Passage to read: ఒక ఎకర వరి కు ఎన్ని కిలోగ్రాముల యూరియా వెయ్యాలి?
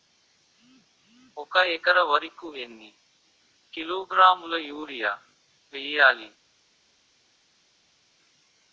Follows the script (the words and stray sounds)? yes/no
yes